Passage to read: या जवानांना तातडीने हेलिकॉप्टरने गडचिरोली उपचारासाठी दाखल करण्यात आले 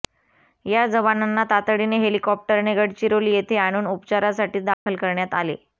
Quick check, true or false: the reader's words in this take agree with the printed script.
false